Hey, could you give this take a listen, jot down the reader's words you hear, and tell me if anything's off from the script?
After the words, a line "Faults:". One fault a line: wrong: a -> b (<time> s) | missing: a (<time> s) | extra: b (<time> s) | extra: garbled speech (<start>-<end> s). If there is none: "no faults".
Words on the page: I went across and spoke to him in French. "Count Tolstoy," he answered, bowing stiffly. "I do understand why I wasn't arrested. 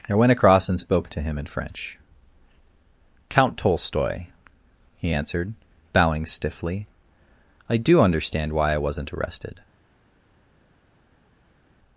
I went across and spoke to him in French. "Count Tolstoy," he answered, bowing stiffly. "I do understand why I wasn't arrested.
Faults:
no faults